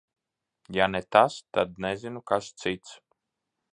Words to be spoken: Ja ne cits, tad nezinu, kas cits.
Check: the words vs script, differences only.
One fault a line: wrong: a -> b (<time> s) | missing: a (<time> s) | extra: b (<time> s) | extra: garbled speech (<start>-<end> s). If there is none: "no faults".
wrong: cits -> tas (1.1 s)